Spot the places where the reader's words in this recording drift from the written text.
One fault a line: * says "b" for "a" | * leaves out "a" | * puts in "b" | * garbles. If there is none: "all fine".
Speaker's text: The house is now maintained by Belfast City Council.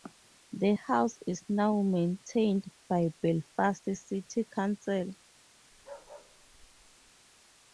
all fine